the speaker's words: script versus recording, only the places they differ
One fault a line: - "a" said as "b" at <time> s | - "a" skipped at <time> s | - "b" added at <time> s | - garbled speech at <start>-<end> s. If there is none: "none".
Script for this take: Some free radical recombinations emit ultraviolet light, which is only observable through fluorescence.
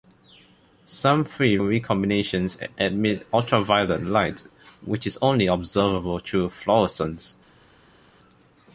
- "radical" skipped at 1.6 s